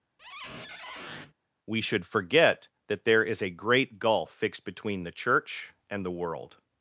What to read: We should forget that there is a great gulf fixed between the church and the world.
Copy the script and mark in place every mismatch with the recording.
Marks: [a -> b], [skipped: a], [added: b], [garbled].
We should forget that there is a great gulf fixed between the church and the world.